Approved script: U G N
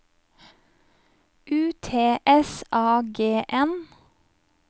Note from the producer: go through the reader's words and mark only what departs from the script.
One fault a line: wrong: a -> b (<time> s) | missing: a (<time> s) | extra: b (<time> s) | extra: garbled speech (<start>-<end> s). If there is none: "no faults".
extra: T S A (1.8 s)